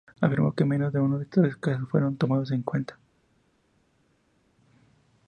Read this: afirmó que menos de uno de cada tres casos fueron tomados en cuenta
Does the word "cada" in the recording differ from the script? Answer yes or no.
yes